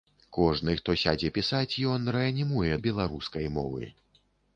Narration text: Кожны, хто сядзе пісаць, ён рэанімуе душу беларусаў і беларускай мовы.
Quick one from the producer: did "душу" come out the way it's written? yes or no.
no